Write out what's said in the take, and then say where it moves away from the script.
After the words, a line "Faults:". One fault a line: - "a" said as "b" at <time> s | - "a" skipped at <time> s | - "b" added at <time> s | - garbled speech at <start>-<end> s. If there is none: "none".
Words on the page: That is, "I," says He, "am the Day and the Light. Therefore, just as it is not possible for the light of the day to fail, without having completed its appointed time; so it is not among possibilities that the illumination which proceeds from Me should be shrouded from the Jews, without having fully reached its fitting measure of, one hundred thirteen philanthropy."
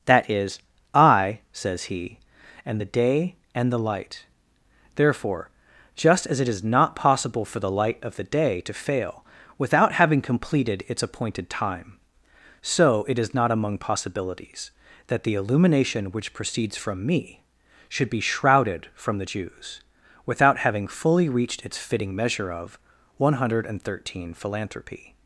That is, "I," says He, "am the Day and the Light. Therefore, just as it is not possible for the light of the day to fail, without having completed its appointed time; so it is not among possibilities that the illumination which proceeds from Me should be shrouded from the Jews, without having fully reached its fitting measure of, one hundred thirteen philanthropy."
Faults:
none